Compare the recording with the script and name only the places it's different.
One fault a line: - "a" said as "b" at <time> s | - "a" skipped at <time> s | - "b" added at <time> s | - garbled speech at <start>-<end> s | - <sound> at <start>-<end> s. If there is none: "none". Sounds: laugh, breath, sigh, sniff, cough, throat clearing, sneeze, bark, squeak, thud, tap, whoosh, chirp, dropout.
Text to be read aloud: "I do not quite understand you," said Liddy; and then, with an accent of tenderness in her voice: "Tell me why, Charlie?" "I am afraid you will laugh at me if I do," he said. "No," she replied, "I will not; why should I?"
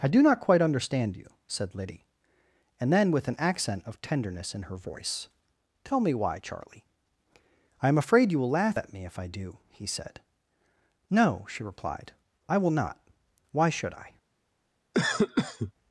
- cough at 14.9-15.7 s